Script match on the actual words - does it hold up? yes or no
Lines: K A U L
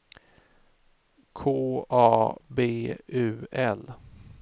no